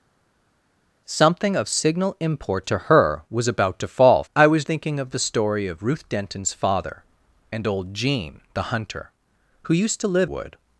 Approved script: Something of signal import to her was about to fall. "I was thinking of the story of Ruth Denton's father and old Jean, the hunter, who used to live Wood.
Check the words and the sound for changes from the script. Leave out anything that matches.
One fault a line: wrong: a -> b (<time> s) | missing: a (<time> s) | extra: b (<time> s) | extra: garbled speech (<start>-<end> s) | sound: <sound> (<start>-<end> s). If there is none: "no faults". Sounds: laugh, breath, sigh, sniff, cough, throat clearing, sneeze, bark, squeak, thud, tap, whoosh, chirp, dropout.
no faults